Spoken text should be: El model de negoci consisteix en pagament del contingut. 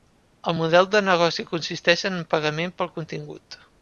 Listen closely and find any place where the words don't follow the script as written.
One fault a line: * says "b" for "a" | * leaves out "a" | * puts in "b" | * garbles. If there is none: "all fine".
* says "pel" for "del"